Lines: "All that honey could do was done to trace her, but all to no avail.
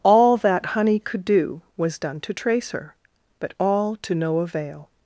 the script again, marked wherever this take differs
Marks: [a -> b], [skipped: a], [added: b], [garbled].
"All that honey could do was done to trace her, but all to no avail.